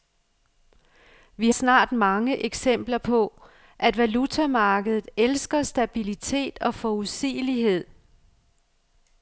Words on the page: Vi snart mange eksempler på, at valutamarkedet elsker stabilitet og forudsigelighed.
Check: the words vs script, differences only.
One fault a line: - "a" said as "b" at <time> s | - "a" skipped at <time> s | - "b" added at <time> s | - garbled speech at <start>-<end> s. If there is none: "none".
none